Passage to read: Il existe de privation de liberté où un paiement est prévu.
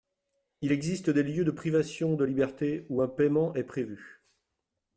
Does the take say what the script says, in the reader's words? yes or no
no